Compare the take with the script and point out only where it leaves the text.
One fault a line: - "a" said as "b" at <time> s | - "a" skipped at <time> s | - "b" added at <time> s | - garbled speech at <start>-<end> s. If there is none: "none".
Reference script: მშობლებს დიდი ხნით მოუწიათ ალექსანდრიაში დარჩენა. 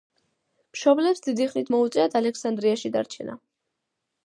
none